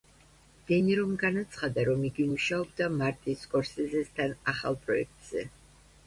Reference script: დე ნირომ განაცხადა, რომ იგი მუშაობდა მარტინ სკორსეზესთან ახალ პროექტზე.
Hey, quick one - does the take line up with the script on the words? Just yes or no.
yes